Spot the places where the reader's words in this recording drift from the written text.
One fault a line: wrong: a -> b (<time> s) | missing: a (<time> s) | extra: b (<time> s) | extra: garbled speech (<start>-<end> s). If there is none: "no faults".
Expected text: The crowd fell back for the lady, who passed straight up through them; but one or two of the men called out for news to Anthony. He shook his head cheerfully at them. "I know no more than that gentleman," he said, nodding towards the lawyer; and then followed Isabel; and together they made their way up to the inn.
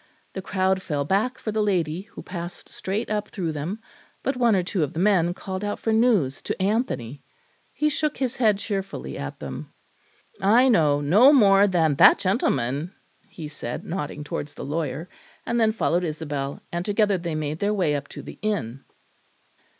no faults